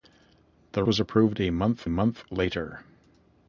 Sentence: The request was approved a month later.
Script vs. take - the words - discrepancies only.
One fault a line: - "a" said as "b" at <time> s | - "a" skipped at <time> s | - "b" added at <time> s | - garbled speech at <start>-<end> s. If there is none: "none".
- "request" skipped at 0.8 s
- "month" added at 1.9 s